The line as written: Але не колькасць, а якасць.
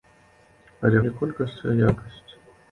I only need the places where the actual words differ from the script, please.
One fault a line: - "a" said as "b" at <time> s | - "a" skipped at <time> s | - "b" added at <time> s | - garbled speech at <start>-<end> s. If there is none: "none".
none